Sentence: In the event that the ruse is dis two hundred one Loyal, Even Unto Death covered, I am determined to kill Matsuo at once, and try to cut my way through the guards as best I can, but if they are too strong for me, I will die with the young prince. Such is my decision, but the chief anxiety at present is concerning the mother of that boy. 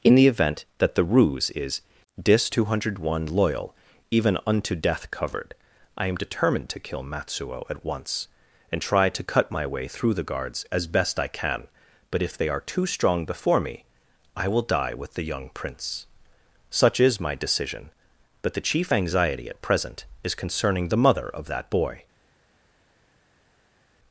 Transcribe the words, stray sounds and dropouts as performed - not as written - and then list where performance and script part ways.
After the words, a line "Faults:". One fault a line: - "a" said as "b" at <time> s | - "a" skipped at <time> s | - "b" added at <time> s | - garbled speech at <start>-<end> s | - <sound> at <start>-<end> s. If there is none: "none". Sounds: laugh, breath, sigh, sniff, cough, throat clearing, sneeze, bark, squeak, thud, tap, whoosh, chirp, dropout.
In the event that the ruse is dis two hundred one Loyal, Even Unto Death covered, I am determined to kill Matsuo at once, and try to cut my way through the guards as best I can, but if they are too strong before me, I will die with the young prince. Such is my decision, but the chief anxiety at present is concerning the mother of that boy.
Faults:
- "for" said as "before" at 13.3 s